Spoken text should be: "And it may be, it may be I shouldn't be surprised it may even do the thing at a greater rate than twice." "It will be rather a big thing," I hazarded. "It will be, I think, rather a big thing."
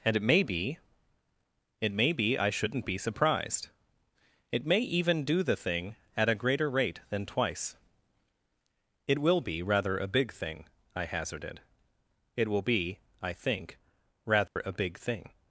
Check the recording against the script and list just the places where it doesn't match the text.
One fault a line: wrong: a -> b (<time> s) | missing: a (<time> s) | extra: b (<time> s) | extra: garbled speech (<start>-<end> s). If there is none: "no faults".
no faults